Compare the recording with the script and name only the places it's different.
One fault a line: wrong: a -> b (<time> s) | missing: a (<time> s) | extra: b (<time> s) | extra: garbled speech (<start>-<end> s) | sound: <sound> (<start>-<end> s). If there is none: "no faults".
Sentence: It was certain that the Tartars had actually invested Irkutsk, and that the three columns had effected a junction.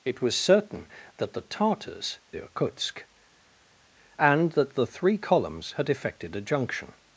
missing: had actually invested (2.2 s)